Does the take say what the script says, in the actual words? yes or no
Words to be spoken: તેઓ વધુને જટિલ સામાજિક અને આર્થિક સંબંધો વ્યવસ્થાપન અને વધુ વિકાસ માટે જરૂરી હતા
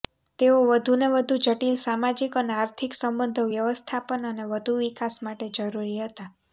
no